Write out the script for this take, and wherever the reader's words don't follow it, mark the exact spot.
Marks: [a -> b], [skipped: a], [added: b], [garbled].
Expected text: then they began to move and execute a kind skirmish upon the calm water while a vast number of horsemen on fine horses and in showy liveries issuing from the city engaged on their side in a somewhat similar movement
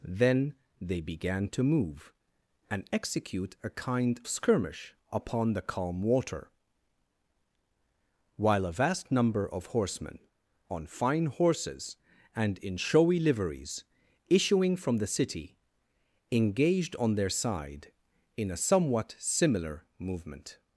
then they began to move and execute a kind skirmish upon the calm water while a vast number of horsemen on fine horses and in showy liveries issuing from the city engaged on their side in a somewhat similar movement